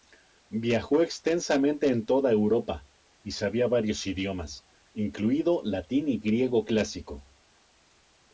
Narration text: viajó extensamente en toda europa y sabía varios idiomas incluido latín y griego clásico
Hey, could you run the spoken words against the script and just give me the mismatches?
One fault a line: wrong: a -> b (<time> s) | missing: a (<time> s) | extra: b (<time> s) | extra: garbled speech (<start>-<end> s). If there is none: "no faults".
no faults